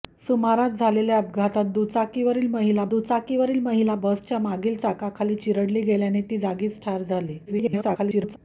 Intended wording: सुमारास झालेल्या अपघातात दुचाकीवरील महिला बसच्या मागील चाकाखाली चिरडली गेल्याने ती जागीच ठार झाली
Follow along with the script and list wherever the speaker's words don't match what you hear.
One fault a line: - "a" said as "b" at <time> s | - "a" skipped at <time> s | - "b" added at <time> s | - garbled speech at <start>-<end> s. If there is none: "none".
- "दुचाकीवरील महिला" added at 2.9 s
- garbled speech at 7.5-8.4 s